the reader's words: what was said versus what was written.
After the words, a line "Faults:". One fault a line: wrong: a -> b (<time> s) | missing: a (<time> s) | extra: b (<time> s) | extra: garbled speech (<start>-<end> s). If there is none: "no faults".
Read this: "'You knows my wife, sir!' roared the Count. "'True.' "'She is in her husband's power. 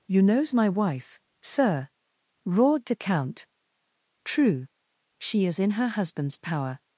"'You knows my wife, sir!' roared the Count. "'True.' "'She is in her husband's power.
Faults:
no faults